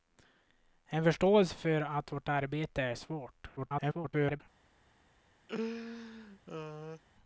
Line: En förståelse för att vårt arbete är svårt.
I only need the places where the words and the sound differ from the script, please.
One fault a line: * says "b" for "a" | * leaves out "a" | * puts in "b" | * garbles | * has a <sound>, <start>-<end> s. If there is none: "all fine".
* garbles
* has a laugh, 5.5-7.0 s